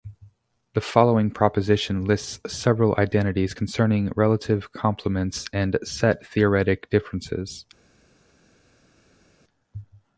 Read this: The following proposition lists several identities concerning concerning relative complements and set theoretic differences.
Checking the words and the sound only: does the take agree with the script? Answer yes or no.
no